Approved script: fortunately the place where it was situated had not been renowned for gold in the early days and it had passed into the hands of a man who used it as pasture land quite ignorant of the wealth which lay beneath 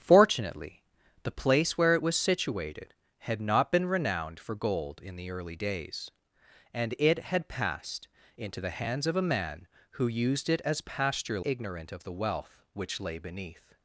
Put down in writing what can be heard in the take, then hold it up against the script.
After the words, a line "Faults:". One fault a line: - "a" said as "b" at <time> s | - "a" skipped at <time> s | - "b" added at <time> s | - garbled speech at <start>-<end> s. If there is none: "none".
fortunately the place where it was situated had not been renowned for gold in the early days and it had passed into the hands of a man who used it as pasture ignorant of the wealth which lay beneath
Faults:
- "land quite" skipped at 11.4 s